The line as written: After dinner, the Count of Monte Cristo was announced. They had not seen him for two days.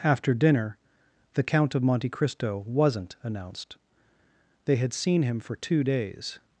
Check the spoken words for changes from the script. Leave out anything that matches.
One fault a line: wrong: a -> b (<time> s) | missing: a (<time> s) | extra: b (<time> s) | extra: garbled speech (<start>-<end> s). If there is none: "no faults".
wrong: was -> wasn't (2.6 s)
missing: not (4.9 s)